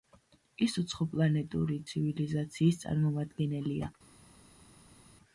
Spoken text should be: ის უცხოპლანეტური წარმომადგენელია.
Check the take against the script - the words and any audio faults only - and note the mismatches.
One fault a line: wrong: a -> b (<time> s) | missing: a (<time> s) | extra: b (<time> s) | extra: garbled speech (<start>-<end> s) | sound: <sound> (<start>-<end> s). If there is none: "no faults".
extra: ცივილიზაციის (1.9 s)